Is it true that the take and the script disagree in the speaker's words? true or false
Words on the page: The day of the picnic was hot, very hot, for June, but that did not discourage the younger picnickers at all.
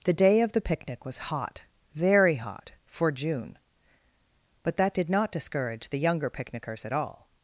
false